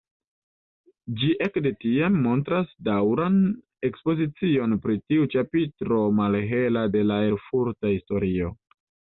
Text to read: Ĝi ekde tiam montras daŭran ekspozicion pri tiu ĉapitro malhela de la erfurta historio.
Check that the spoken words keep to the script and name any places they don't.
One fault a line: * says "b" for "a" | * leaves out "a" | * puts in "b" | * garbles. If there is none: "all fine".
all fine